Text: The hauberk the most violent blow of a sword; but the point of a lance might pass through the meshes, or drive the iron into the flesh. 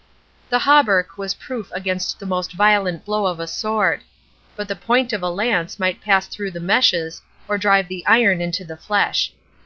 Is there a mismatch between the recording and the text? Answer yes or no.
yes